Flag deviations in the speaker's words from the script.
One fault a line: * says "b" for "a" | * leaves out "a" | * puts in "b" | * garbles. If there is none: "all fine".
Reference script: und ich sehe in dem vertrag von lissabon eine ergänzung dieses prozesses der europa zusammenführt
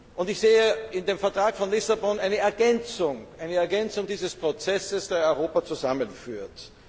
all fine